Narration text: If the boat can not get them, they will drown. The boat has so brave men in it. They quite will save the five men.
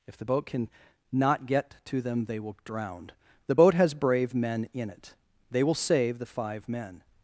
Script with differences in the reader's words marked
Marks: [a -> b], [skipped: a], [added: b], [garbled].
If the boat can not get [added: to] them, they will drown. The boat has [skipped: so] brave men in it. They [skipped: quite] will save the five men.